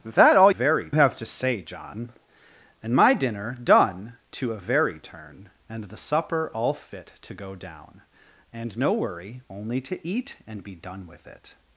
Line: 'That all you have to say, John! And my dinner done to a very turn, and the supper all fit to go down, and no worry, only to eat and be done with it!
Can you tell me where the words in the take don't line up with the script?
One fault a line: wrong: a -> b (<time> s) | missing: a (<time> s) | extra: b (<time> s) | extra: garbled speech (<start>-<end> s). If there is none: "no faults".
wrong: you -> very (0.5 s)